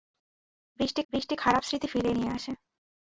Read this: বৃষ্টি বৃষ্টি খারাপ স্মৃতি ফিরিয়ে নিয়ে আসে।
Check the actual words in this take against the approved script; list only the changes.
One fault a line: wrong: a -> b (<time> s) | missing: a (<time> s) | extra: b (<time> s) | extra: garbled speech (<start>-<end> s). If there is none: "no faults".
no faults